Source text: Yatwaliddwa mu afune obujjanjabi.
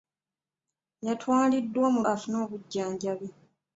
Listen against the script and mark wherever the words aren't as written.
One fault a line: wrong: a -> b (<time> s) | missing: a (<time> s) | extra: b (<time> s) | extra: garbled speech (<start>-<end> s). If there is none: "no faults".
no faults